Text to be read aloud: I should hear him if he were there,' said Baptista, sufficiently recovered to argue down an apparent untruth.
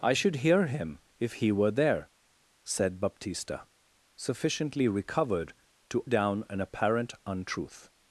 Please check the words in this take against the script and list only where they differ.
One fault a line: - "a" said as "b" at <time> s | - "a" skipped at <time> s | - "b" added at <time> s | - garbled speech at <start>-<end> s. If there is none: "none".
- "argue" skipped at 6.0 s